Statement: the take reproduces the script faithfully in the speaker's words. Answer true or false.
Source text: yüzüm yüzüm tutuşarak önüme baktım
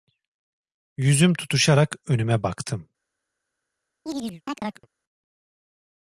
false